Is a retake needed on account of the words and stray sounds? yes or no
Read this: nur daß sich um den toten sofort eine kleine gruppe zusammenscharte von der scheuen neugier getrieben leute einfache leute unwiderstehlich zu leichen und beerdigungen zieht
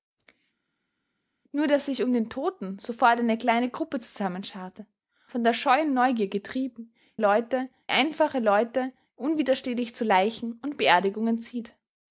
no